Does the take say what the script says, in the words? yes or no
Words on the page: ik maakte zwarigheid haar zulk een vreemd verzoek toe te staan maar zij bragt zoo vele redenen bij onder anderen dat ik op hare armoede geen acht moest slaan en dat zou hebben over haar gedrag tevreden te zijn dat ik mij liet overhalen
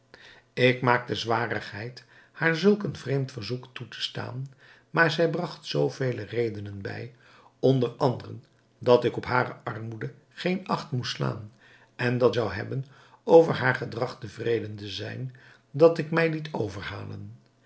yes